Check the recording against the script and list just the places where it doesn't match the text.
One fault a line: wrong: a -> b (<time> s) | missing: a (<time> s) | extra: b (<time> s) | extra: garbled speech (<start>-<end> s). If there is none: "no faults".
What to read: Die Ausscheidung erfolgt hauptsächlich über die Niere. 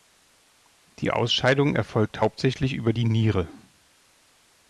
no faults